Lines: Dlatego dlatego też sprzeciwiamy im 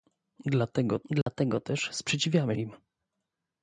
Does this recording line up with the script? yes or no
yes